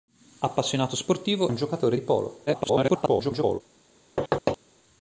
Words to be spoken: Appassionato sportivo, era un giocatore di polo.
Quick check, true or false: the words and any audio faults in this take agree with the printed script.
false